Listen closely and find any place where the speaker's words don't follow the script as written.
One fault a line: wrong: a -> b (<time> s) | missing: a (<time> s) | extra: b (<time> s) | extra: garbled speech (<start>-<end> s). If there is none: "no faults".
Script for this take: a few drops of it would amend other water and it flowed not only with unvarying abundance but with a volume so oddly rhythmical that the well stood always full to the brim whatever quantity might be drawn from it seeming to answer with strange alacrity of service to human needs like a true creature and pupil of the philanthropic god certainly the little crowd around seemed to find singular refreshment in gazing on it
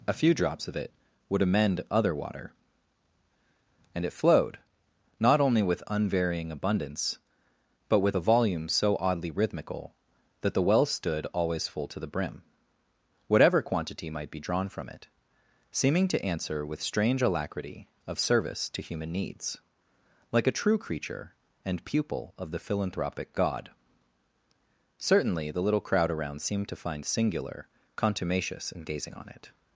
wrong: refreshment -> contumacious (28.0 s)